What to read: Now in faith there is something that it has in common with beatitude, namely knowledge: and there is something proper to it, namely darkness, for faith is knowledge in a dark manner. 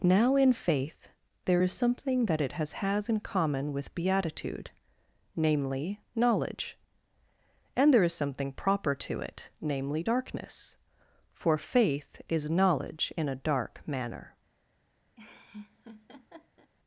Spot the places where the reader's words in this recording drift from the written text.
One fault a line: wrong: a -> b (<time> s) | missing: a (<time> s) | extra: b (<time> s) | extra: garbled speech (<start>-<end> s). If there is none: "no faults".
extra: has (2.7 s)